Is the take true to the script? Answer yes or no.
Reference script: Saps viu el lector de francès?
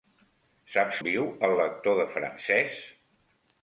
yes